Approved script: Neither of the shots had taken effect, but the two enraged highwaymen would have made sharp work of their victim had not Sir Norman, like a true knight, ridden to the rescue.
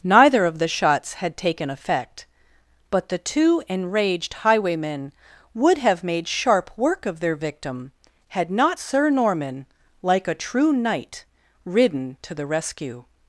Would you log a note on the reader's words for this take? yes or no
no